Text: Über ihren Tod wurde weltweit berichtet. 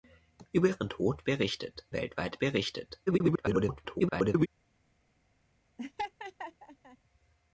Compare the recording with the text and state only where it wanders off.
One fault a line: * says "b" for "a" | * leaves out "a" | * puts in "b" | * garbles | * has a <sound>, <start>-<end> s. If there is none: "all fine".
* says "berichtet" for "wurde"
* garbles
* has a laugh, 5.8-7.0 s